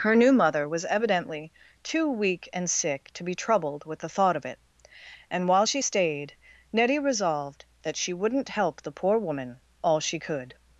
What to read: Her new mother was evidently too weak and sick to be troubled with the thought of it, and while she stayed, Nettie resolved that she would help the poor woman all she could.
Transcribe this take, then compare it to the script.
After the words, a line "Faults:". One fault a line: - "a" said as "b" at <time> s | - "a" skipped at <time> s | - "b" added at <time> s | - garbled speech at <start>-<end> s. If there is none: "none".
Her new mother was evidently too weak and sick to be troubled with the thought of it, and while she stayed, Nettie resolved that she wouldn't help the poor woman all she could.
Faults:
- "would" said as "wouldn't" at 8.1 s